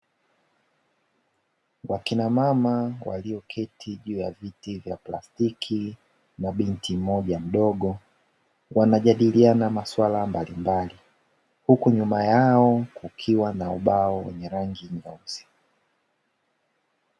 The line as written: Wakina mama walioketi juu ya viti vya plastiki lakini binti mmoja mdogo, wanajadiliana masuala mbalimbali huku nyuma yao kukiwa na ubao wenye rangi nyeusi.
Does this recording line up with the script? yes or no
no